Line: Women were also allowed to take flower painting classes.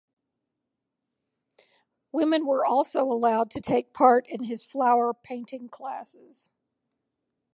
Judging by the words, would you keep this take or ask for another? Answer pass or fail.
fail